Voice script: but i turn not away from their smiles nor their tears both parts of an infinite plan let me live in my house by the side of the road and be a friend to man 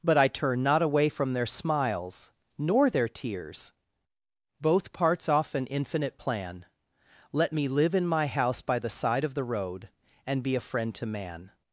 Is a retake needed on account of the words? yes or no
yes